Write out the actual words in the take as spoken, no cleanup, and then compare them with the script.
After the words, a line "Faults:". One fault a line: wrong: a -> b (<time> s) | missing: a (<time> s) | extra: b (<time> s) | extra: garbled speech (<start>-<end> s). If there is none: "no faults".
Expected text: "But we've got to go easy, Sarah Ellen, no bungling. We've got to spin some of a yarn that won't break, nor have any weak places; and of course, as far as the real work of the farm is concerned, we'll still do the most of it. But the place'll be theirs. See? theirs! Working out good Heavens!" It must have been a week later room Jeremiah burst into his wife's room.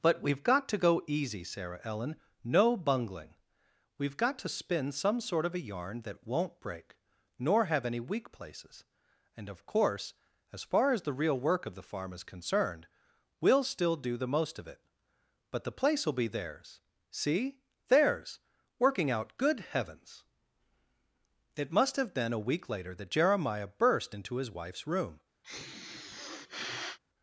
"But we've got to go easy, Sarah Ellen, no bungling. We've got to spin some sort of a yarn that won't break, nor have any weak places; and of course, as far as the real work of the farm is concerned, we'll still do the most of it. But the place'll be theirs. See? theirs! Working out good Heavens!" It must have been a week later that Jeremiah burst into his wife's room.
Faults:
extra: sort (5.2 s)
wrong: room -> that (22.9 s)